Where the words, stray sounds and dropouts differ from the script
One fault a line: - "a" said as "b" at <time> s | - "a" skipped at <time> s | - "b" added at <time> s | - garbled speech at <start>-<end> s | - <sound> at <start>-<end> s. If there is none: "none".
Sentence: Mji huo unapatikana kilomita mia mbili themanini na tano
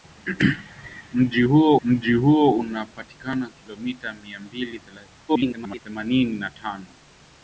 - "mji huo" added at 1.8 s
- garbled speech at 5.3-5.8 s